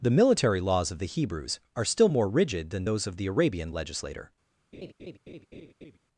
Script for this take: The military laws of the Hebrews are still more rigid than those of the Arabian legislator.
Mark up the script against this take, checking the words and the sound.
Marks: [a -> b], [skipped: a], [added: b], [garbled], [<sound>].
The military laws of the Hebrews are still more rigid than those of the Arabian legislator. [laugh]